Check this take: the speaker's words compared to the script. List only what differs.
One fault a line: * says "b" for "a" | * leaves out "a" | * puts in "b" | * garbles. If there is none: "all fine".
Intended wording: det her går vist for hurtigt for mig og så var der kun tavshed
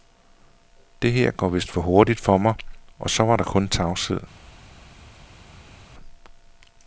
all fine